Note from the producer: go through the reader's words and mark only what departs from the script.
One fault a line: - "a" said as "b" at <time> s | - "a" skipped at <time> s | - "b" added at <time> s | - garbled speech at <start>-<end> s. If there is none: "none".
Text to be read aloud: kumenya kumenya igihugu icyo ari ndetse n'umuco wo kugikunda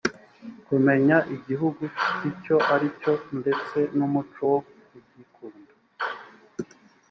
- "kumenya" skipped at 1.2 s
- "cyo" added at 3.0 s